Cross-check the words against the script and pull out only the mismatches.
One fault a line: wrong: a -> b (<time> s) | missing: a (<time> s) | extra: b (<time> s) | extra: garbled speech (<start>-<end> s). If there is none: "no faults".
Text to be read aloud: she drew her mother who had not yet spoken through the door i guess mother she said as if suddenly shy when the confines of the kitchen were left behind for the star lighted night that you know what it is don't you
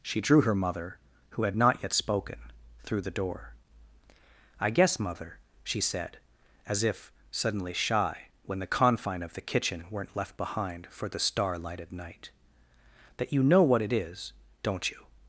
wrong: confines -> confine (8.7 s)
wrong: were -> weren't (9.9 s)